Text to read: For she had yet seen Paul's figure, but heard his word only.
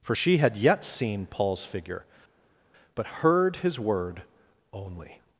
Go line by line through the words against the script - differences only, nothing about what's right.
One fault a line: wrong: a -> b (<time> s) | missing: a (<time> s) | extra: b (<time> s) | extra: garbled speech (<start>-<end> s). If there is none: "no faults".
no faults